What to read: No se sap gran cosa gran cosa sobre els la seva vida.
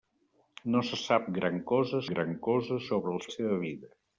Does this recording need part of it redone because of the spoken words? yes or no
no